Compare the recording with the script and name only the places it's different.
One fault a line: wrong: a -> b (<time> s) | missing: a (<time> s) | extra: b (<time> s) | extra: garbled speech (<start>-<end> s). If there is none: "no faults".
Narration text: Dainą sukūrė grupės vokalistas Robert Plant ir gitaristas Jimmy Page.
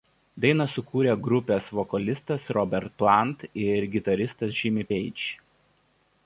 no faults